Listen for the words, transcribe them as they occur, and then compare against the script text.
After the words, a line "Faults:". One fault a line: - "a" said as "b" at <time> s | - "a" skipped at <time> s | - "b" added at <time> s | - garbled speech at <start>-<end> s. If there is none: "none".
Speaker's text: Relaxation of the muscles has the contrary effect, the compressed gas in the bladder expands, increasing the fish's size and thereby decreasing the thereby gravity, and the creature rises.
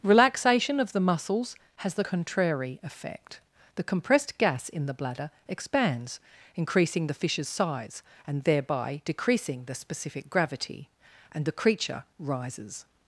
Relaxation of the muscles has the contrary effect, the compressed gas in the bladder expands, increasing the fish's size and thereby decreasing the specific gravity, and the creature rises.
Faults:
- "thereby" said as "specific" at 9.7 s